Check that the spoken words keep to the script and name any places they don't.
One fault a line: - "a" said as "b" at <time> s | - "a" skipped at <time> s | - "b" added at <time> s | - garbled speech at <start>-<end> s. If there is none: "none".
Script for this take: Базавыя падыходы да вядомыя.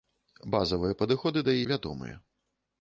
none